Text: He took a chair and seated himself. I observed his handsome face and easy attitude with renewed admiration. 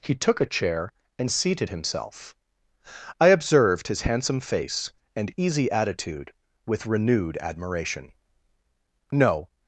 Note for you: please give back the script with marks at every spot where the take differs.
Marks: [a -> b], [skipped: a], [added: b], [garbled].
He took a chair and seated himself. I observed his handsome face and easy attitude with renewed admiration. [added: No]